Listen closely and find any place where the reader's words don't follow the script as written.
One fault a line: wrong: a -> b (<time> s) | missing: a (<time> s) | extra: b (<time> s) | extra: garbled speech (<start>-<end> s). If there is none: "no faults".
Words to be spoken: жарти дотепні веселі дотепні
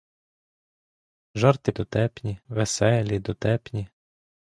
no faults